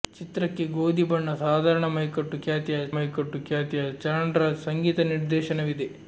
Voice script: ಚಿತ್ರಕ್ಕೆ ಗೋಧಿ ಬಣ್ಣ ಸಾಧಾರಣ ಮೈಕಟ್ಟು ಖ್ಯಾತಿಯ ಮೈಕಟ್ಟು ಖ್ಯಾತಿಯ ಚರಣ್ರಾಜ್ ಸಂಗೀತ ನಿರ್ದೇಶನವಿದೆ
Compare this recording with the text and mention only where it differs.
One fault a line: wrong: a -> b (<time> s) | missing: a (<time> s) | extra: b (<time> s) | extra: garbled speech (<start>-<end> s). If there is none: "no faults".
no faults